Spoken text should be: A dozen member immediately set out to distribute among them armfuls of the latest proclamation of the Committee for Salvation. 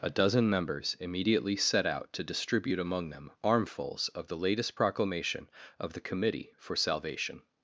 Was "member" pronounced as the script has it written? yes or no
no